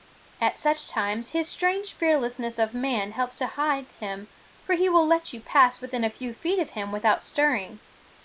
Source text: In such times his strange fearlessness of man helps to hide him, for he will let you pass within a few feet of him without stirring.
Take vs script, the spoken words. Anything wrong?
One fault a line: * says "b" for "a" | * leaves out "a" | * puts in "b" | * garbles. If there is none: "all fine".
* says "At" for "In"